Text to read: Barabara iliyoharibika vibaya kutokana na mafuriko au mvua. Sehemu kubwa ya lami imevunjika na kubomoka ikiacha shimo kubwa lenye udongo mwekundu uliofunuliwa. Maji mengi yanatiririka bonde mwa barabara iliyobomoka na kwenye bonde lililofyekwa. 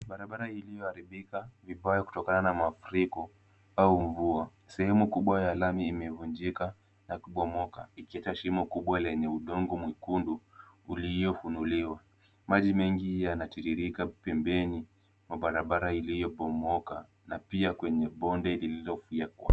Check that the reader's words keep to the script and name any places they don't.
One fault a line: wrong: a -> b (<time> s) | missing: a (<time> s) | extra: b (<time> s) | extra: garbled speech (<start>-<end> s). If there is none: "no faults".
wrong: bonde -> pembeni (14.1 s)
extra: pia (17.4 s)